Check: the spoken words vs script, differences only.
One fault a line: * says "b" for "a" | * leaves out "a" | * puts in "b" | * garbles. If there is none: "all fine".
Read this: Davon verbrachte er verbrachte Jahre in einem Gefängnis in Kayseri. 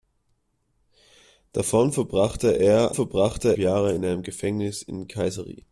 all fine